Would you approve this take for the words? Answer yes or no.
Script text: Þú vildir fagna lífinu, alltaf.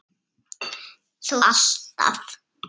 no